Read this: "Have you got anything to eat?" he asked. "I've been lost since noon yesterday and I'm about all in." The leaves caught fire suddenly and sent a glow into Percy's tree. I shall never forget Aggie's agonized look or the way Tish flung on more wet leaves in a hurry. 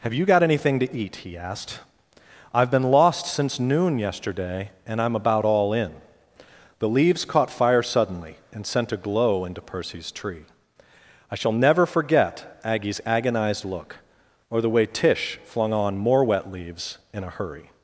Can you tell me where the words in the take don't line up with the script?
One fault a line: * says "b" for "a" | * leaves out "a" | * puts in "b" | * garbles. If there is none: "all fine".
all fine